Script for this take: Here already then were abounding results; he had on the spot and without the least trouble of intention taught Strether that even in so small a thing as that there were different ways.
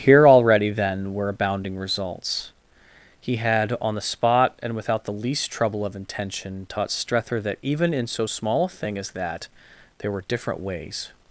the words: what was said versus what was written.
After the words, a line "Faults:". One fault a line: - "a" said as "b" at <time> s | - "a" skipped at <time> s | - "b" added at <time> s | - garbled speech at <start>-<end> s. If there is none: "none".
Here already then were abounding results; he had on the spot and without the least trouble of intention taught Strether that even in so small a thing as that there were different ways.
Faults:
none